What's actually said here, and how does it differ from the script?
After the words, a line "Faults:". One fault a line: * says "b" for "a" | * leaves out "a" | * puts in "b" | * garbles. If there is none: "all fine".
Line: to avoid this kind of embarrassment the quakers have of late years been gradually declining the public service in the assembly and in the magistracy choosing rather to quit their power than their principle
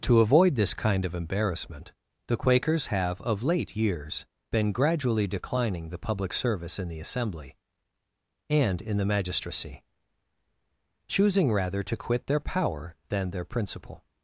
to avoid this kind of embarrassment the quakers have of late years been gradually declining the public service in the assembly and in the magistracy choosing rather to quit their power than their principle
Faults:
all fine